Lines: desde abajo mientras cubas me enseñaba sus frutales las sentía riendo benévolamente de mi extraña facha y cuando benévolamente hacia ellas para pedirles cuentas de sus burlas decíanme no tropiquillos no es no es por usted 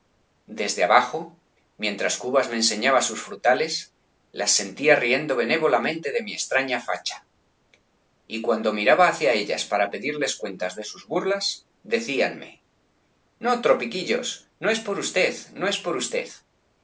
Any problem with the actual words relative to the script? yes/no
yes